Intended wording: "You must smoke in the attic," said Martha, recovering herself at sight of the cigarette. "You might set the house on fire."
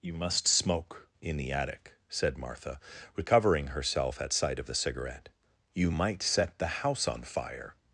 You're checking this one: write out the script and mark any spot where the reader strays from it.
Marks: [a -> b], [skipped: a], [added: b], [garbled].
"You must smoke in the attic," said Martha, recovering herself at sight of the cigarette. "You might set the house on fire."